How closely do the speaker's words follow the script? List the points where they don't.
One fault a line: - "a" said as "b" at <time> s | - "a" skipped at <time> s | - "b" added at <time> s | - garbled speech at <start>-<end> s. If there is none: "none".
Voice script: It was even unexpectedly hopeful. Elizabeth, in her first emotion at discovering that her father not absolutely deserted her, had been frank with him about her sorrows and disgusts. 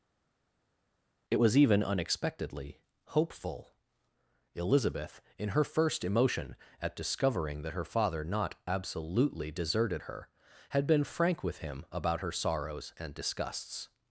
none